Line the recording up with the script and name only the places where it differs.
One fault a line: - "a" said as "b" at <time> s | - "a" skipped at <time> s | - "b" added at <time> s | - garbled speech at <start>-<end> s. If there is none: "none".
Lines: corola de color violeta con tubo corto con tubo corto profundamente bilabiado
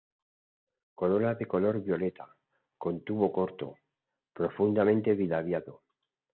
- "con tubo corto" skipped at 3.8 s